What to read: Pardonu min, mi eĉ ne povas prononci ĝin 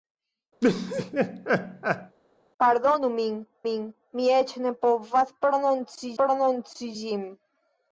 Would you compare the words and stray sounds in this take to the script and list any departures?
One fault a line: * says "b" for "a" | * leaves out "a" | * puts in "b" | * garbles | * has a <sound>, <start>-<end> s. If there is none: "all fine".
* has a laugh, 0.6-2.2 s
* puts in "min"
* puts in "prononci"